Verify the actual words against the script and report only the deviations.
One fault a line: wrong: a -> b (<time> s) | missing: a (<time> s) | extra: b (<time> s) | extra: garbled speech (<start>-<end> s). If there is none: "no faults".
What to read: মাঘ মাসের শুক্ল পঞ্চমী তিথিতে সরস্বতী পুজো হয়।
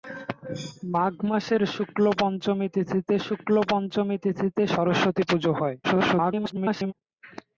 extra: শুক্ল পঞ্চমী তিথিতে (3.2 s)
extra: garbled speech (5.8-6.9 s)